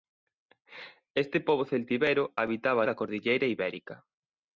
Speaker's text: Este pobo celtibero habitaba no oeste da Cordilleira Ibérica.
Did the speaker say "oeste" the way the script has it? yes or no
no